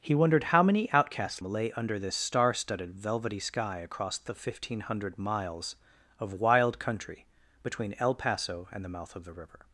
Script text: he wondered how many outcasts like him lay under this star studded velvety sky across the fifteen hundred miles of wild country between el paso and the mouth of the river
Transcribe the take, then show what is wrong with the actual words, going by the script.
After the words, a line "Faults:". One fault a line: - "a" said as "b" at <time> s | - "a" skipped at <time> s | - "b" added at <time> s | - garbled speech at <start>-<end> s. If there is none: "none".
he wondered how many outcasts lay under this star studded velvety sky across the fifteen hundred miles of wild country between el paso and the mouth of the river
Faults:
- "like him" skipped at 1.4 s